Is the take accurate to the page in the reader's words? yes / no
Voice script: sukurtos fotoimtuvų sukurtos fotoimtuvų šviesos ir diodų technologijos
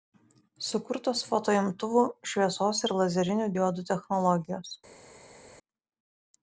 no